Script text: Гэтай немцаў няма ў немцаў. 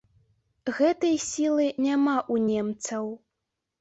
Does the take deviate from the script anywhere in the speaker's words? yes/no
yes